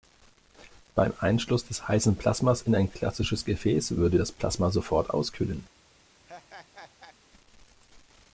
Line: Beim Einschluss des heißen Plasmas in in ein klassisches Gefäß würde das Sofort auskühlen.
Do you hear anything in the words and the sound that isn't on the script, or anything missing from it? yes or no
yes